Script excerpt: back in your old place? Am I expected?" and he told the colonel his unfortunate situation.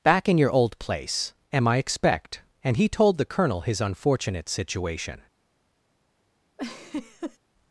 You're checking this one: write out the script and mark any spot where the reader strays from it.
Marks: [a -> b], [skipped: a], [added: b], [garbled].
back in your old place? Am I [expected?" -> expect] and he told the colonel his unfortunate situation.